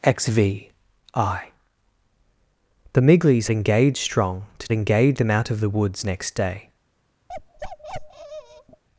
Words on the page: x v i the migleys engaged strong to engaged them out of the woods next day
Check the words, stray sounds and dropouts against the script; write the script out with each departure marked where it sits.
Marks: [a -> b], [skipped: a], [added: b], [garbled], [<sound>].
x v i the migleys engaged strong to engaged them out of the woods next day [bark]